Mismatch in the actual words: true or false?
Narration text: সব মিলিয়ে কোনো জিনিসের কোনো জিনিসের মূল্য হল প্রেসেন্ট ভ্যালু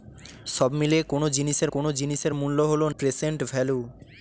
false